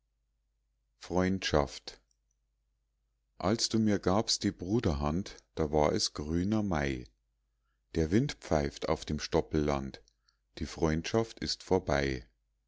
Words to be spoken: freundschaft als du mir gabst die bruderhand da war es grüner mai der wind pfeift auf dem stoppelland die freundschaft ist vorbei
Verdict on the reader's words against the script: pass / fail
pass